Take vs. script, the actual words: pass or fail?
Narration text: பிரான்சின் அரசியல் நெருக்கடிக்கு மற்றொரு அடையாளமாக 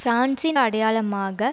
fail